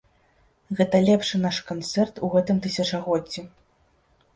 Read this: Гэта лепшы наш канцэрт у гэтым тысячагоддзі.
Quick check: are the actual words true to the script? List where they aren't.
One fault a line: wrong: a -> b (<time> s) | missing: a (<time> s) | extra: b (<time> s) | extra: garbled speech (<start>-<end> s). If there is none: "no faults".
no faults